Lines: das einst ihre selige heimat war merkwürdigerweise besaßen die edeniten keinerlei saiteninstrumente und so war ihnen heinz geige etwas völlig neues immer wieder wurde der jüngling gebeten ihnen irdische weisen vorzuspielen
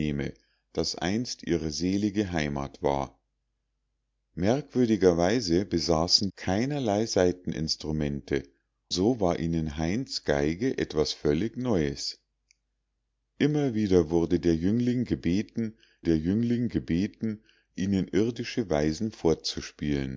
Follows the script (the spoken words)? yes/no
no